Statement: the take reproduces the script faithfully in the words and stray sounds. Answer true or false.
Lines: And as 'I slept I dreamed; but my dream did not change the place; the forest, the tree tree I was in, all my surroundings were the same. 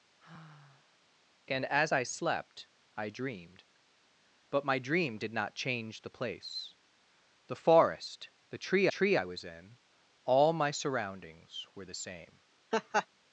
false